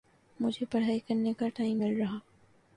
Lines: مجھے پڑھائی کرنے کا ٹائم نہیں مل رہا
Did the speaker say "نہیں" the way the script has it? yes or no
no